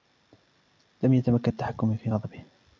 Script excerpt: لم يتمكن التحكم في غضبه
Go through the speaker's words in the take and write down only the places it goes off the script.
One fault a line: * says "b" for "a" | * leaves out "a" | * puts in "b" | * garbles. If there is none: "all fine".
all fine